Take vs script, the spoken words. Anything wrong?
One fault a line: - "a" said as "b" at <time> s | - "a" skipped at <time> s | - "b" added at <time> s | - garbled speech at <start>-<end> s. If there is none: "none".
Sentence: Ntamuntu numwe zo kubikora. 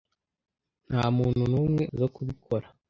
none